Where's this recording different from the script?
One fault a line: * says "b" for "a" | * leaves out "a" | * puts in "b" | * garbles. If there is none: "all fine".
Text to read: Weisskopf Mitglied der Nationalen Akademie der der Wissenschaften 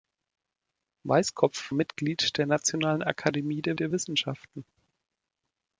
all fine